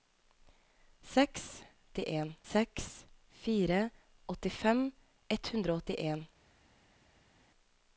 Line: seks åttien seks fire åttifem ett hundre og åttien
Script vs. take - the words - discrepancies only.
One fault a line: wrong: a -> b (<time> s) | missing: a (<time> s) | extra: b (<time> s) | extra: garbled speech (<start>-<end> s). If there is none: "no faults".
no faults